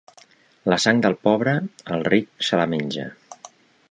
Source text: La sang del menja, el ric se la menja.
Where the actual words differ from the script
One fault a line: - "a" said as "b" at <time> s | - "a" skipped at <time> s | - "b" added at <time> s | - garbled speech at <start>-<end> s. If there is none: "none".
- "menja" said as "pobre" at 1.3 s